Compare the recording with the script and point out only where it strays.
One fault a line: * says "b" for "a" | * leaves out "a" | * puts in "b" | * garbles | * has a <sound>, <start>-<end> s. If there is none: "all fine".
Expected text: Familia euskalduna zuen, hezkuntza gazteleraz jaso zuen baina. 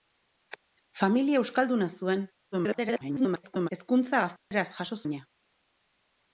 * garbles
* has a dropout, 4.4-4.5 s
* leaves out "zuen"